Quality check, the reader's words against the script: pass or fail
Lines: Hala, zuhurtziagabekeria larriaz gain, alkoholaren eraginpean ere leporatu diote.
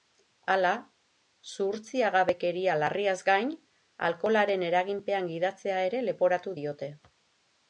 fail